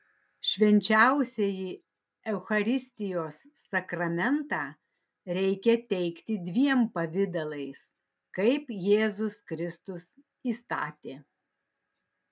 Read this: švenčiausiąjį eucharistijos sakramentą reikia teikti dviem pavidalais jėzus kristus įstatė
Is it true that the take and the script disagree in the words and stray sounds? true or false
true